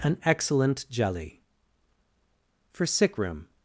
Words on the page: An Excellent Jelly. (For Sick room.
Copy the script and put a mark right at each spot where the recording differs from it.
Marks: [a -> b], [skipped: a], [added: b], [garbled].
An Excellent Jelly. (For Sick room.